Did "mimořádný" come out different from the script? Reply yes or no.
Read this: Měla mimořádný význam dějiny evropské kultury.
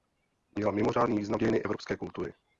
no